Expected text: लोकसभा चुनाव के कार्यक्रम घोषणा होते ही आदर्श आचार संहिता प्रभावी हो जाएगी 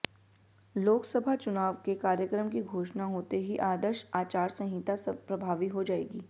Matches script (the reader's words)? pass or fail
fail